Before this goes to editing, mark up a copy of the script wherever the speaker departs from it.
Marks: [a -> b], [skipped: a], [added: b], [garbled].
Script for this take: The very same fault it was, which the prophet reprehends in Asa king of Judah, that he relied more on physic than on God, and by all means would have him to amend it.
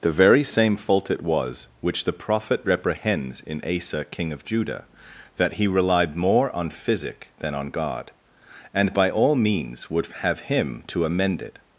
The very same fault it was, which the prophet reprehends in Asa king of Judah, that he relied more on physic than on God, and by all means would have him to amend it.